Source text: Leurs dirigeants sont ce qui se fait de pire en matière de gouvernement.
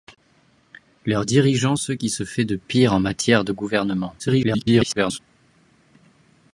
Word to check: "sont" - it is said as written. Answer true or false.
false